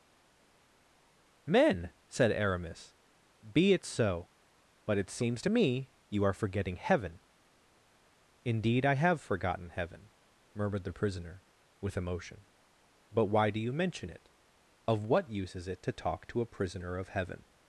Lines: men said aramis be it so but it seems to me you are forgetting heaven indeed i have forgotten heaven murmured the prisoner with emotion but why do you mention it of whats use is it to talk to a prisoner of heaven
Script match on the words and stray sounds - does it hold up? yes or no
no